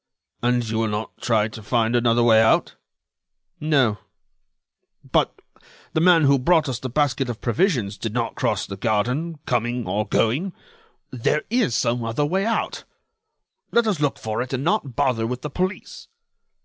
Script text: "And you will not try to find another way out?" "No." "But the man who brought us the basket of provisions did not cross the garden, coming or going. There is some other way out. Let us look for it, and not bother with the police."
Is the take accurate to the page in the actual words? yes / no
yes